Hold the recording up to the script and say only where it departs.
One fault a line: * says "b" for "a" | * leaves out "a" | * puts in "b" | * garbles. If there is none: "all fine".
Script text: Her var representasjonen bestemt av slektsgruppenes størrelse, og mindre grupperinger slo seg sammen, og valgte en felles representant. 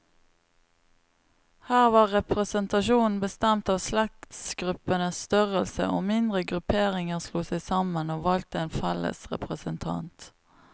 all fine